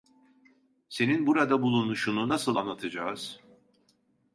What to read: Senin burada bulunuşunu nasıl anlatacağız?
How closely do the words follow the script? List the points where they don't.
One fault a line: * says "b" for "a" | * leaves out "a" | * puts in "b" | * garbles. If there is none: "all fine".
all fine